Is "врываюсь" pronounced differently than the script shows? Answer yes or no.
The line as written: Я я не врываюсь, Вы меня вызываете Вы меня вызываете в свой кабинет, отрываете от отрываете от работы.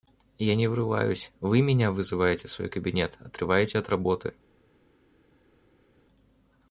no